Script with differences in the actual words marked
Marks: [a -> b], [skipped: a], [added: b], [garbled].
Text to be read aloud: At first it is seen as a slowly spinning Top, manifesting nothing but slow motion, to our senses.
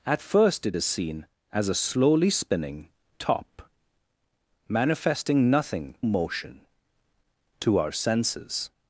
At first it is seen as a slowly spinning Top, manifesting nothing [skipped: but slow] motion, to our senses.